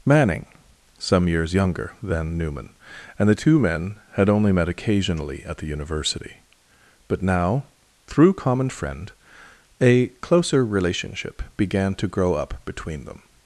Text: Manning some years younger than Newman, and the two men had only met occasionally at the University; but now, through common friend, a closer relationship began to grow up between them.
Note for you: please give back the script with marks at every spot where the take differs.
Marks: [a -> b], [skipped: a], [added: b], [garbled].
Manning some years younger than Newman, and the two men had only met occasionally at the University; but now, through common friend, a closer relationship began to grow up between them.